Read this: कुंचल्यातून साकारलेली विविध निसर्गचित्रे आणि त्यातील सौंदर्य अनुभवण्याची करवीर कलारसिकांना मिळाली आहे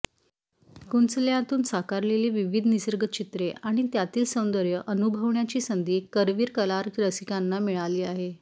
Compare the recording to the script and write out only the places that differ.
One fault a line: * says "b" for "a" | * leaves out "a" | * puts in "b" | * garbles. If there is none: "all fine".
* puts in "संधी"